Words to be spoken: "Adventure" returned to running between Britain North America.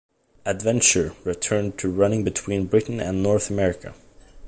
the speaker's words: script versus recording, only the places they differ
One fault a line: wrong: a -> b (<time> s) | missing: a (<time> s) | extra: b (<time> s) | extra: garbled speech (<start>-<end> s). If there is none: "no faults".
extra: and (3.0 s)